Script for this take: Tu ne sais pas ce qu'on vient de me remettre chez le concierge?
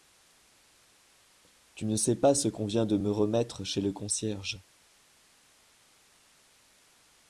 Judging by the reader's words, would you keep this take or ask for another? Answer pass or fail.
pass